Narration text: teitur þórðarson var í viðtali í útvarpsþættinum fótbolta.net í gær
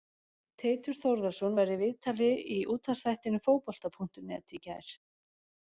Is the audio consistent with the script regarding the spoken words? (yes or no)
yes